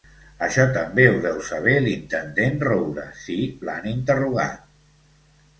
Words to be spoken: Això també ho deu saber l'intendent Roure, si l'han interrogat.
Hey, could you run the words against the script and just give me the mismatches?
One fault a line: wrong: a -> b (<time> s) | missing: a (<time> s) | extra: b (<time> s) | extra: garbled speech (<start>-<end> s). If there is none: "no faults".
no faults